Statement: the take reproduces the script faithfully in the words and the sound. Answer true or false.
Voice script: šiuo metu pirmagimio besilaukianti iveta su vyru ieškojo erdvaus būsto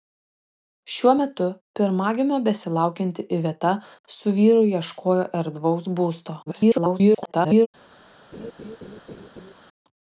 false